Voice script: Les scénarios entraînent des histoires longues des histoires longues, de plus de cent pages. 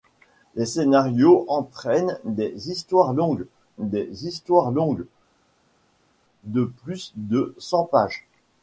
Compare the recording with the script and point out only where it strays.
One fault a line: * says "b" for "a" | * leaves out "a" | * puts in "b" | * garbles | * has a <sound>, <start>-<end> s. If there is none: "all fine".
all fine